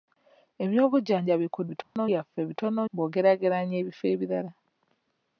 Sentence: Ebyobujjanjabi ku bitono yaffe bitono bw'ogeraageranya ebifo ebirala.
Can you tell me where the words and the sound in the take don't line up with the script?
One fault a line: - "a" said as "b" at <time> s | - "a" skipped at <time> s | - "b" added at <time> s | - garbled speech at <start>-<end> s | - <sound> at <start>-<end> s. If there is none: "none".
- dropout at 1.8-2.0 s